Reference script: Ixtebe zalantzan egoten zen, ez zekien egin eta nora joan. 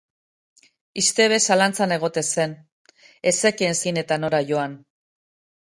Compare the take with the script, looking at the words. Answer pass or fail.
pass